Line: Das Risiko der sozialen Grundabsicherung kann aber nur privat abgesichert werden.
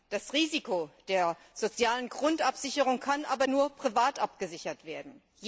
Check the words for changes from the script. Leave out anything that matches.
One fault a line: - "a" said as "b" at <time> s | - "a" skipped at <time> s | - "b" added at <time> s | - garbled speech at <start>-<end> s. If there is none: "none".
none